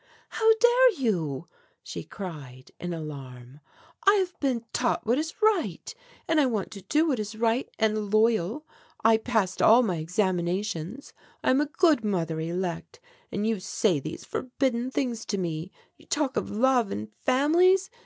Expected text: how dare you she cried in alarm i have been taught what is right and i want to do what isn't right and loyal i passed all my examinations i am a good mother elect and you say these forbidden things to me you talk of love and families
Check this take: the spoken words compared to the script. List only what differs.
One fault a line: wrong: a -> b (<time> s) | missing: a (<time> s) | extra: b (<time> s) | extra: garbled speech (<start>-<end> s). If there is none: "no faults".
wrong: isn't -> is (7.2 s)